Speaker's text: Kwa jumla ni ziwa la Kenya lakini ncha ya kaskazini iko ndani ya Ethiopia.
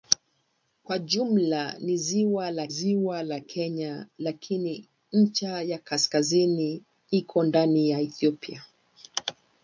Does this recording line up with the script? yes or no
no